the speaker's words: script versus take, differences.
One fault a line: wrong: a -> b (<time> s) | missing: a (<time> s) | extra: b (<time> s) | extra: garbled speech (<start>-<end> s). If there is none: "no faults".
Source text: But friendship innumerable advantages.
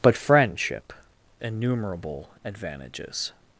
no faults